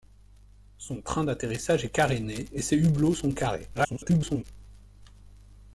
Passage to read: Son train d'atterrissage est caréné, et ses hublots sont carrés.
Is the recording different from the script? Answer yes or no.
yes